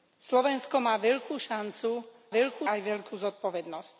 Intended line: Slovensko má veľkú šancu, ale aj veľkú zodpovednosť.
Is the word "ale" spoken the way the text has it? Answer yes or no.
no